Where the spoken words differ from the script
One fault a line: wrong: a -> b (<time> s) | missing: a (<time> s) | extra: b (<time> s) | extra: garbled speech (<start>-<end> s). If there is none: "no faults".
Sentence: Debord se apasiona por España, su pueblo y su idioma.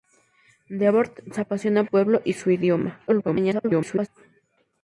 missing: por España su (1.8 s)
extra: garbled speech (3.1-4.1 s)